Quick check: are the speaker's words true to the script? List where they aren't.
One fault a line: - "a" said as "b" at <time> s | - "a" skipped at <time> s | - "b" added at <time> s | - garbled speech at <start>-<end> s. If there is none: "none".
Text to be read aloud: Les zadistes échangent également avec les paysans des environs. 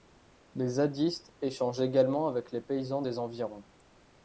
none